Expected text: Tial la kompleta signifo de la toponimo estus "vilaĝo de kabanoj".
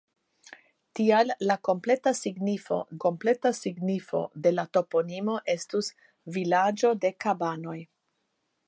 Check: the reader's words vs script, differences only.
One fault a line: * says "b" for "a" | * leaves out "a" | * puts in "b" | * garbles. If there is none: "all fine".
* puts in "kompleta signifo"